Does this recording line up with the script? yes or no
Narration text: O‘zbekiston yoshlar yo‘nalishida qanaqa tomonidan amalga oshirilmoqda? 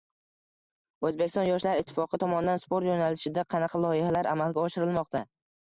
no